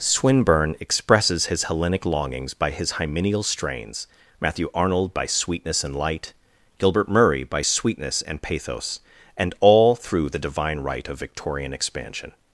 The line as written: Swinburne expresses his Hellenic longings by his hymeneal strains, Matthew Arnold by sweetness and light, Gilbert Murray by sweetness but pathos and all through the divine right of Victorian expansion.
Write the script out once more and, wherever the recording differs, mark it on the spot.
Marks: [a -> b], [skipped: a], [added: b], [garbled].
Swinburne expresses his Hellenic longings by his hymeneal strains, Matthew Arnold by sweetness and light, Gilbert Murray by sweetness [but -> and] pathos and all through the divine right of Victorian expansion.